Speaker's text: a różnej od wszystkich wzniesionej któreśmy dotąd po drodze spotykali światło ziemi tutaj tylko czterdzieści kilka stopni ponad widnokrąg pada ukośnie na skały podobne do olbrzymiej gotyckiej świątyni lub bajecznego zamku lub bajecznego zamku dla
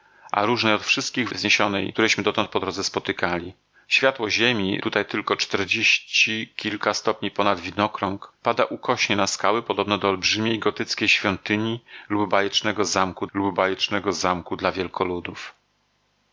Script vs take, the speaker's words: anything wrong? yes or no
no